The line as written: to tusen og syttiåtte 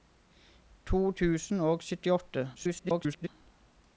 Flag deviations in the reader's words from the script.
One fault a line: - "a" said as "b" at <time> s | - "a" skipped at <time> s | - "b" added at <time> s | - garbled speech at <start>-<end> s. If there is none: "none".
- garbled speech at 2.5-3.3 s